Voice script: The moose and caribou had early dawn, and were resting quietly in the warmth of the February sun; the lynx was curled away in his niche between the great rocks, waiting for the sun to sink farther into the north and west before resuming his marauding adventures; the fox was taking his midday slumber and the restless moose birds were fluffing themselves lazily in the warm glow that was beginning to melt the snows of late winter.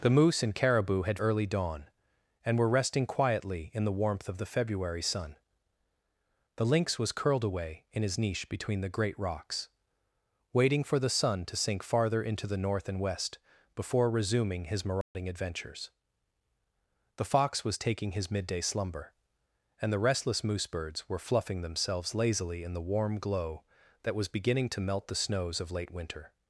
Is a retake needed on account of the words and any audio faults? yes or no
yes